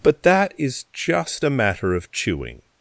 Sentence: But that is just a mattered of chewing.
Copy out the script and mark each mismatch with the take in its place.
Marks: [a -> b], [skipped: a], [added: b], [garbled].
But that is just a [mattered -> matter] of chewing.